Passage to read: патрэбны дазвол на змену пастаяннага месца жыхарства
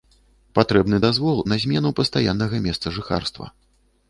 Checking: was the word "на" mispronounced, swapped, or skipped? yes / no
no